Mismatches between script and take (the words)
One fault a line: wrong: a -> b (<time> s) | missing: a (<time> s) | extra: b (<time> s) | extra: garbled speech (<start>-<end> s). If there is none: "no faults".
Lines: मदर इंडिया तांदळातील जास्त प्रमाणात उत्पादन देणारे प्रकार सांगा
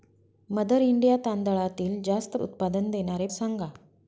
missing: प्रमाणात (2.4 s)
missing: प्रकार (3.3 s)